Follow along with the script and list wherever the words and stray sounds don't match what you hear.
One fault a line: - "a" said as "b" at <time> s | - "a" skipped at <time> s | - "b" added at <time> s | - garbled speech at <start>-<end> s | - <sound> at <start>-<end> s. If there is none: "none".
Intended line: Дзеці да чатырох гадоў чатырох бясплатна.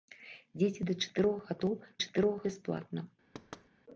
- thud at 3.3-3.7 s